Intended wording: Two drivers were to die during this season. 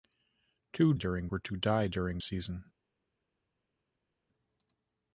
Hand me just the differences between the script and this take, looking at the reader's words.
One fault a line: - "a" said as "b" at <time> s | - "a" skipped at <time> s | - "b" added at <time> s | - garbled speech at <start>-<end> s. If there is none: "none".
- "drivers" said as "during" at 0.9 s
- "this" skipped at 2.2 s